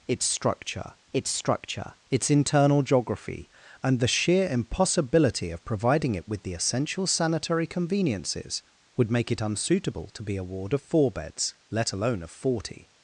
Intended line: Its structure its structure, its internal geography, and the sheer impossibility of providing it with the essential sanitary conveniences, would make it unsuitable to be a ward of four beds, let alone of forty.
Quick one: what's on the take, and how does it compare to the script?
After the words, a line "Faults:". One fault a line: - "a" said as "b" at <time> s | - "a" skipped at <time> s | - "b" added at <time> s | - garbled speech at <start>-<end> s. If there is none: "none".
Its structure its structure, its internal geography, and the sheer impossibility of providing it with the essential sanitary conveniences, would make it unsuitable to be a ward of four beds, let alone of forty.
Faults:
none